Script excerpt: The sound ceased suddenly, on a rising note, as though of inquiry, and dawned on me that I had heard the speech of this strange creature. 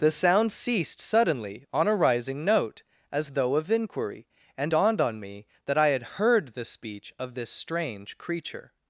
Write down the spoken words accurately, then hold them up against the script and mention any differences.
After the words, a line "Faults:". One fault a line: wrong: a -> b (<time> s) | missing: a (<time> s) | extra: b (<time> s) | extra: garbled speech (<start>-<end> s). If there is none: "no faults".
The sound ceased suddenly, on a rising note, as though of inquiry, and dawned on me that I had heard the speech of this strange creature.
Faults:
no faults